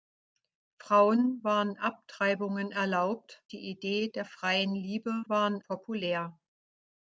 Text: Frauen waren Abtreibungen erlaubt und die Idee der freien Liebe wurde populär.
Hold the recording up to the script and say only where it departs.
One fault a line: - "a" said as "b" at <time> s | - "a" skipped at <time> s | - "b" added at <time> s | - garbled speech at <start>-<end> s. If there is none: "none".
- "und" skipped at 3.4 s
- "wurde" said as "waren" at 5.3 s